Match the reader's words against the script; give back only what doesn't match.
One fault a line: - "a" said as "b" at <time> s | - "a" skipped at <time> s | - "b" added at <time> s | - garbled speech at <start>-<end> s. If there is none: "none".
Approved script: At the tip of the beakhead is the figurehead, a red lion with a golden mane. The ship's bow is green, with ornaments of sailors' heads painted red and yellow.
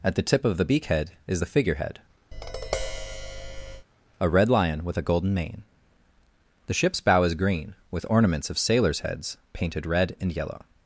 none